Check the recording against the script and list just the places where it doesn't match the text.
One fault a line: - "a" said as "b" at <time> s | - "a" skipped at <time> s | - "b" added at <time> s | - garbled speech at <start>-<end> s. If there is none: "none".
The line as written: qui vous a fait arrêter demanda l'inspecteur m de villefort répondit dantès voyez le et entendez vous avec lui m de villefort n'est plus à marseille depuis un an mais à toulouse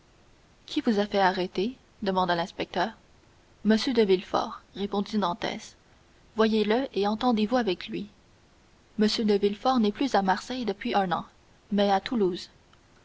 none